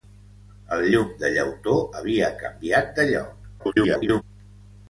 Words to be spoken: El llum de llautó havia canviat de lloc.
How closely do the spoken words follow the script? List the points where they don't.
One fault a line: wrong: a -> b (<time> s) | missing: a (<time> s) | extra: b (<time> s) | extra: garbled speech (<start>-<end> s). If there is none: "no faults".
extra: garbled speech (3.6-4.2 s)